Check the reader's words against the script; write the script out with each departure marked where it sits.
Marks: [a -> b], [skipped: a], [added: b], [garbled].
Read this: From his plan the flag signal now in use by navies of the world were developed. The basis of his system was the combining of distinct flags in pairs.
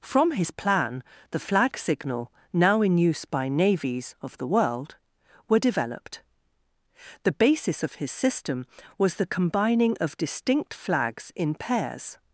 From his plan the flag signal now in use by navies of the world were developed. The basis of his system was the combining of distinct flags in pairs.